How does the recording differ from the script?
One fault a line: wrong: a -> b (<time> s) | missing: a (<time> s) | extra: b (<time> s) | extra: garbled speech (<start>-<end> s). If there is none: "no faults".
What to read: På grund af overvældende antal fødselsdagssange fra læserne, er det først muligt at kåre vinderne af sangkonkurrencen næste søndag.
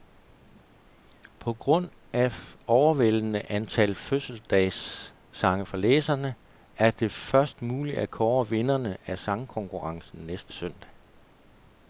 no faults